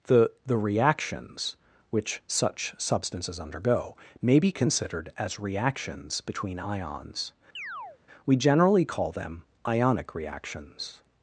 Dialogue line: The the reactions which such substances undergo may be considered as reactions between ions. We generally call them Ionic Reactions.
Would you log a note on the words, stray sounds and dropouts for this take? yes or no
yes